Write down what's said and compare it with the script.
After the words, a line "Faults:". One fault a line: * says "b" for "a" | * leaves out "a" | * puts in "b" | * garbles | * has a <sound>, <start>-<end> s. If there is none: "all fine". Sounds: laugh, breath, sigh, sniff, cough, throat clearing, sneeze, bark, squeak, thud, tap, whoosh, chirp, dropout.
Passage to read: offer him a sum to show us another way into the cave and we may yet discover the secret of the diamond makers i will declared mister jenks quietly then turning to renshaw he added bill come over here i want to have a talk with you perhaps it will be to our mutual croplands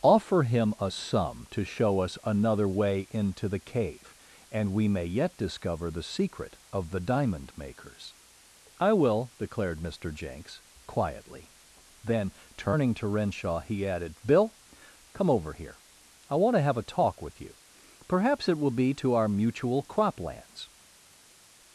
offer him a sum to show us another way into the cave and we may yet discover the secret of the diamond makers i will declared mister jenks quietly then turning to renshaw he added bill come over here i want to have a talk with you perhaps it will be to our mutual croplands
Faults:
all fine